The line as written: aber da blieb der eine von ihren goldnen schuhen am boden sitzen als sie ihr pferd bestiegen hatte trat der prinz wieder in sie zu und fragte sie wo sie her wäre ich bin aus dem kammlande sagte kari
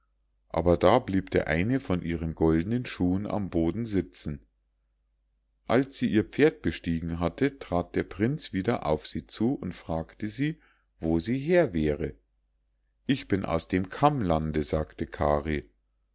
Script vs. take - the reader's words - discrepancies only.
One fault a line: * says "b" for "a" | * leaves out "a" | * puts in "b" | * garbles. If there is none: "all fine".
* says "auf" for "in"